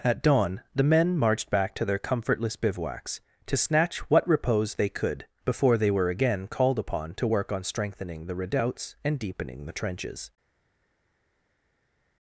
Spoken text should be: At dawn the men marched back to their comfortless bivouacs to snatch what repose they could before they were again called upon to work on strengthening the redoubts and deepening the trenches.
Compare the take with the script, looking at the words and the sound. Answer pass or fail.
pass